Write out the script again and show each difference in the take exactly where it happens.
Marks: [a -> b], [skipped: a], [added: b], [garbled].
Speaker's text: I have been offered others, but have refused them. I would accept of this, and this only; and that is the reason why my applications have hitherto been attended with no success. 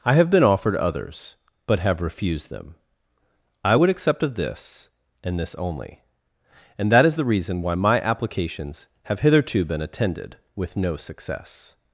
I have been offered others, but have refused them. I would accept of this, and this only; and that is the reason why my applications have hitherto been attended with no success.